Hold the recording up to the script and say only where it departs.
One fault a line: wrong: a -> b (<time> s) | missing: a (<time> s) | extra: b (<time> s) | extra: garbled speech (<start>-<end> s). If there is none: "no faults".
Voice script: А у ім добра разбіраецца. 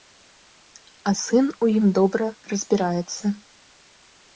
extra: сын (1.2 s)